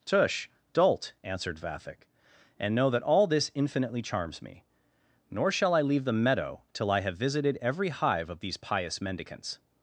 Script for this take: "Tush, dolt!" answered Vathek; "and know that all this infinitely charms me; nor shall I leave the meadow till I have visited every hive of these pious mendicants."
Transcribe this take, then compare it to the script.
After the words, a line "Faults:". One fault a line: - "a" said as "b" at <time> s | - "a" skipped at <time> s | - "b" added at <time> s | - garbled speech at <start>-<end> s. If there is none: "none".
"Tush, dolt!" answered Vathek; "and know that all this infinitely charms me; nor shall I leave the meadow till I have visited every hive of these pious mendicants."
Faults:
none